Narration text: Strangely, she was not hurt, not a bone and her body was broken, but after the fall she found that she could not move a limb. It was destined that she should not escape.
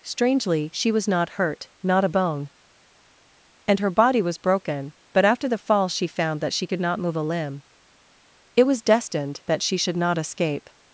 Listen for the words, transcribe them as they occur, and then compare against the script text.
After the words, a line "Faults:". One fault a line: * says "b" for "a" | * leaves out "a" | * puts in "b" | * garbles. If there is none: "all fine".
Strangely, she was not hurt, not a bone and her body was broken, but after the fall she found that she could not move a limb. It was destined that she should not escape.
Faults:
all fine